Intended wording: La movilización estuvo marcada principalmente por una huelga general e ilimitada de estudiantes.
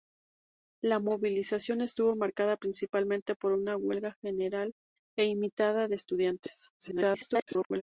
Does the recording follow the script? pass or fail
fail